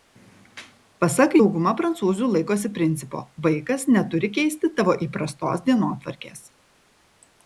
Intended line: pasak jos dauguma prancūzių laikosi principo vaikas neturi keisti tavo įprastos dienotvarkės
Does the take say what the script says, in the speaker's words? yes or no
no